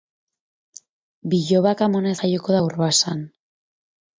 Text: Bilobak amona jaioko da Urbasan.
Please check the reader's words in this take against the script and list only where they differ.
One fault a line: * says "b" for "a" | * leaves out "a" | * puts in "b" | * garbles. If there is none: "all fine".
all fine